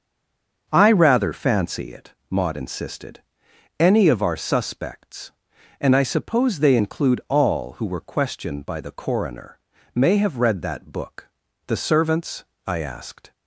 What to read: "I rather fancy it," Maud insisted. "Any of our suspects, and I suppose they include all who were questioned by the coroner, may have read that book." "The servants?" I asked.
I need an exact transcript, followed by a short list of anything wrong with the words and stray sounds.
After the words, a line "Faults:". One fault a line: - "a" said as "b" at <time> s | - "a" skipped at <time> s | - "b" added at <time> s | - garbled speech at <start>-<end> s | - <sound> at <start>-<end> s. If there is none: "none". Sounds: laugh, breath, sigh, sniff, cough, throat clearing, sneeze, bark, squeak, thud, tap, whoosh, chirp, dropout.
"I rather fancy it," Maud insisted. "Any of our suspects, and I suppose they include all who were questioned by the coroner, may have read that book." "The servants?" I asked.
Faults:
none